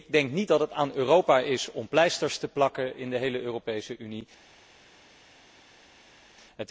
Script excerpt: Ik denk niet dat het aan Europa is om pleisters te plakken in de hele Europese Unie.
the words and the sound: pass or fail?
pass